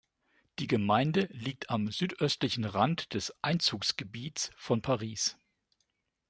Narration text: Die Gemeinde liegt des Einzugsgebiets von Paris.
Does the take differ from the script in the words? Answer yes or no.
yes